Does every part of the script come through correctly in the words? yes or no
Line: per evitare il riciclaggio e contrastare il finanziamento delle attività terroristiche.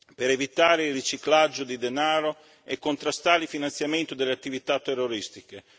no